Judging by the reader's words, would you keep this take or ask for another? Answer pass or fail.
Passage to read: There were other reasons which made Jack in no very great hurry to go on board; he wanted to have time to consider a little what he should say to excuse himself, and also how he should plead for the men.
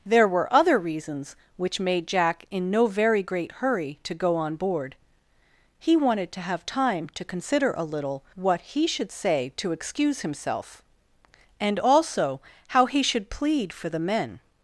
pass